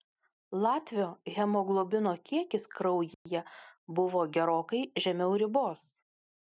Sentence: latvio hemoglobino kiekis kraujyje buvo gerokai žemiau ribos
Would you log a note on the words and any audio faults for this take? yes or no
yes